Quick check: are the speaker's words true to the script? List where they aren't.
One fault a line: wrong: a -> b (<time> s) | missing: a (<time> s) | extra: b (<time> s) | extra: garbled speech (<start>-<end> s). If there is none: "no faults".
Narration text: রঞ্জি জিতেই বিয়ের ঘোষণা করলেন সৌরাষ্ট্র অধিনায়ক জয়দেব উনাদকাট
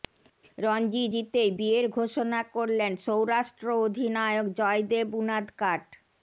no faults